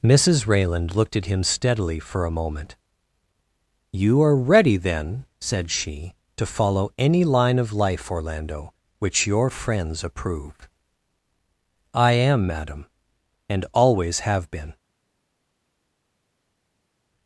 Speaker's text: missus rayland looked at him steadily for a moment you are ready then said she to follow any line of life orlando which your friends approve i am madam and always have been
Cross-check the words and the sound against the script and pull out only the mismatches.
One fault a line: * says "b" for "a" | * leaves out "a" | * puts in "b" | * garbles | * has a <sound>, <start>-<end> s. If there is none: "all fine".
all fine